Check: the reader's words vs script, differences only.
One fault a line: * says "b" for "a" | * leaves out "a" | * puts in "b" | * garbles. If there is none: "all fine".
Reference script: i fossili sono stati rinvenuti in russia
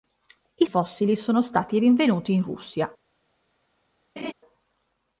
all fine